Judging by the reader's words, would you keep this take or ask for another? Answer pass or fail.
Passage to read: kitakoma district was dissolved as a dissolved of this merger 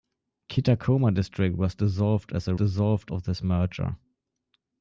pass